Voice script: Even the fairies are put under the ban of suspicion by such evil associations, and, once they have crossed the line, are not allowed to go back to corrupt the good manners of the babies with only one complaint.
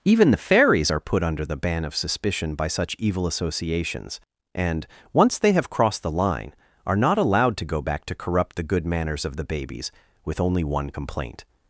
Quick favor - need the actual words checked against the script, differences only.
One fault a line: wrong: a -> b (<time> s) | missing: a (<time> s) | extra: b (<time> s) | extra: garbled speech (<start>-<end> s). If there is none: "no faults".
no faults